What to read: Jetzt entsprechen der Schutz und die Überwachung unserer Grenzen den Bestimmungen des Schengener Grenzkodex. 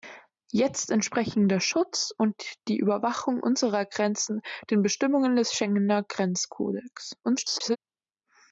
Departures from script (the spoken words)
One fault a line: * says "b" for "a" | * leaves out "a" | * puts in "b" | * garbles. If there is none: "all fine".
* garbles